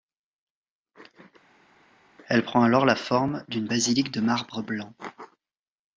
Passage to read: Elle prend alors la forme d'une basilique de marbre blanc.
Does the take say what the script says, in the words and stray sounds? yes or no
yes